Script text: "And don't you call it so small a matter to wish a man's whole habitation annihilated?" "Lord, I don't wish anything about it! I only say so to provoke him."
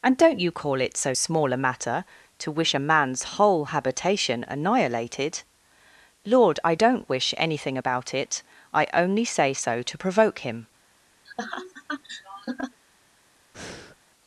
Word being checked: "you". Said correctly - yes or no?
yes